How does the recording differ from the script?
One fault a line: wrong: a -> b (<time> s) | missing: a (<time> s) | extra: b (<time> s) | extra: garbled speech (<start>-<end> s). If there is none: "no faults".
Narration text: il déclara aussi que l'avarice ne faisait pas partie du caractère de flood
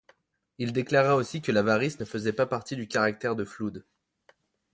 no faults